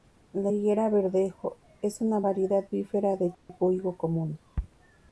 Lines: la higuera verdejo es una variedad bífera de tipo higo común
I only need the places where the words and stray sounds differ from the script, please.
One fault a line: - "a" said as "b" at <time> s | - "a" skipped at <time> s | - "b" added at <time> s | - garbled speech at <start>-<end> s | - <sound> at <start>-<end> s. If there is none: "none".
- dropout at 3.3-3.5 s